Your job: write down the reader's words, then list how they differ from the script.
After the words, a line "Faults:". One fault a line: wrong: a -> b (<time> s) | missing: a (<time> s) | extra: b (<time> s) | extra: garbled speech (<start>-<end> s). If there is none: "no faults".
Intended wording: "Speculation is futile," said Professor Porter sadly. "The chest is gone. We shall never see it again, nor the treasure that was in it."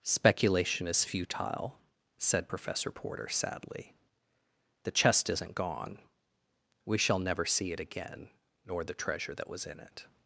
"Speculation is futile," said Professor Porter sadly. "The chest isn't gone. We shall never see it again, nor the treasure that was in it."
Faults:
wrong: is -> isn't (5.3 s)